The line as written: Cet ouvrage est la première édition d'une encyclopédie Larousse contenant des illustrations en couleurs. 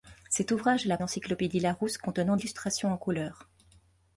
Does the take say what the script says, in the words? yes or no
no